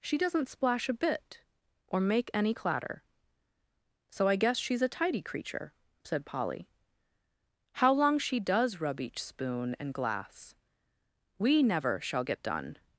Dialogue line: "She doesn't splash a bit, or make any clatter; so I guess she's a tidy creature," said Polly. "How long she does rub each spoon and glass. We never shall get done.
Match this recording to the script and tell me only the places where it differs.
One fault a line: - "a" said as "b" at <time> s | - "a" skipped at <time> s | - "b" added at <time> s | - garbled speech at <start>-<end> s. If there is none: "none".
none